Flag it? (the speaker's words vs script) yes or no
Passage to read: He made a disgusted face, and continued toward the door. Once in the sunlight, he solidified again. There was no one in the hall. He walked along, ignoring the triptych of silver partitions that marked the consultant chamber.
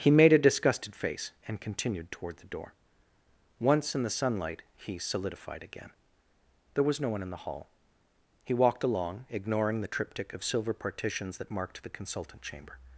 no